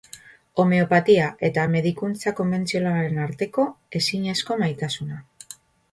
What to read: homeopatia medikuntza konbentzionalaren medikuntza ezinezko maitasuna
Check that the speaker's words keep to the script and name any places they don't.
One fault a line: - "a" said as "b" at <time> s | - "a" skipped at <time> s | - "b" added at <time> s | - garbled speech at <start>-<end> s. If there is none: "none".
- "eta" added at 1.5 s
- "medikuntza" said as "arteko" at 3.3 s